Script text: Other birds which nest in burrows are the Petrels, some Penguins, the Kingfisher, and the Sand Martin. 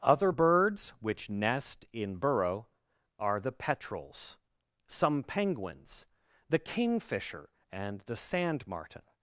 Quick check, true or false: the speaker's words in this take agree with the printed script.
false